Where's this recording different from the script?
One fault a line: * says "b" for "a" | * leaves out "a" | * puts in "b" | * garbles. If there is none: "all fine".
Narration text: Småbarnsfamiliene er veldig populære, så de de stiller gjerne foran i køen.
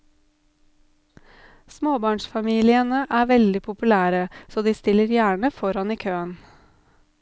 * leaves out "de"